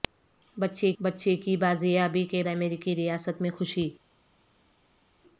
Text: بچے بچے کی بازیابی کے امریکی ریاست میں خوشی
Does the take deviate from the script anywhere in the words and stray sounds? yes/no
no